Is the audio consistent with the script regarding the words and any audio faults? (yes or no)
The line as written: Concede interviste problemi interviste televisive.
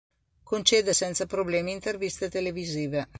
no